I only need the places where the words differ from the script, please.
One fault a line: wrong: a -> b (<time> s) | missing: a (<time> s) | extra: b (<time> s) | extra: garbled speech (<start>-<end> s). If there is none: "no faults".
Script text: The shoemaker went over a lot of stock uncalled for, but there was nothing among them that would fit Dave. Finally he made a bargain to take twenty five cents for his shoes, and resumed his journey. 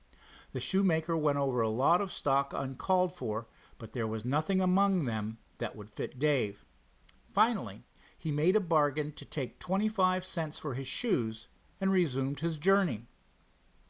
no faults